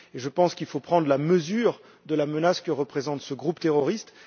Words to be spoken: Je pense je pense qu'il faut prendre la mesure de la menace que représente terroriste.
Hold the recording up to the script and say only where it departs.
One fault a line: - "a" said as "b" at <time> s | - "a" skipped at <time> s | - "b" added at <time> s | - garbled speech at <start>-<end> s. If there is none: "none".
- "je pense" skipped at 0.6 s
- "ce groupe" added at 3.2 s